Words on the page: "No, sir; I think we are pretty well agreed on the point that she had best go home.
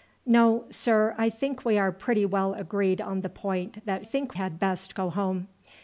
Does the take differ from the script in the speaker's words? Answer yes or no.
yes